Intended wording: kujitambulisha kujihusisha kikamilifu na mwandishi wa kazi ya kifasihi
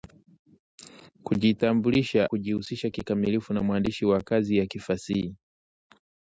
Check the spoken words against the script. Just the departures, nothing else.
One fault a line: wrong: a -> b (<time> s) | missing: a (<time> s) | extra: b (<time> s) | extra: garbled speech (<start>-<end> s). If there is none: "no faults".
no faults